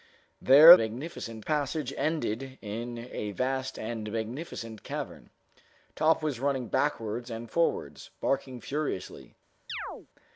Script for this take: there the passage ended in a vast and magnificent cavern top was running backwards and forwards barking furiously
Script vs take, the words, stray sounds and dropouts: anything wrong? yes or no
yes